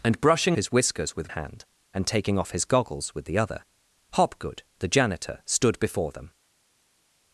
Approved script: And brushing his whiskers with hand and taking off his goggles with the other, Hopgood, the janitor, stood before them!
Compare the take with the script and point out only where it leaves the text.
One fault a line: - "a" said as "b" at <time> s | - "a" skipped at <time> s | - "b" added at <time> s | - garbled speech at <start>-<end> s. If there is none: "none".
none